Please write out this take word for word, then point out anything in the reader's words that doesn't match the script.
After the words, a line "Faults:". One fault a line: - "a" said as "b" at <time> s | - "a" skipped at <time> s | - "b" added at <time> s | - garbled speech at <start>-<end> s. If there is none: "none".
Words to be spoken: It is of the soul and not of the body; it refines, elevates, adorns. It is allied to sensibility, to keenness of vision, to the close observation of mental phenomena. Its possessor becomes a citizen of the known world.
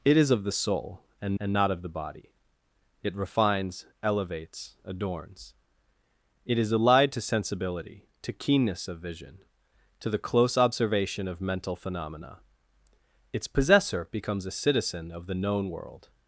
It is of the soul and and not of the body; it refines, elevates, adorns. It is allied to sensibility, to keenness of vision, to the close observation of mental phenomena. Its possessor becomes a citizen of the known world.
Faults:
- "and" added at 1.4 s